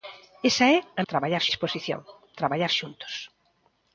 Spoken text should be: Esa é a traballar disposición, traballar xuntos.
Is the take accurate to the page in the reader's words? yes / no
yes